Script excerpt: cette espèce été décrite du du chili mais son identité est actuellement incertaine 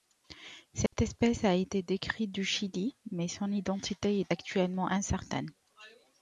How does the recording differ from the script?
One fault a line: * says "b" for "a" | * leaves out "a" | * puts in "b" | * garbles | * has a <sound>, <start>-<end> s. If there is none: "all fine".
* has a dropout, 0.9-0.9 s
* puts in "a"
* leaves out "du"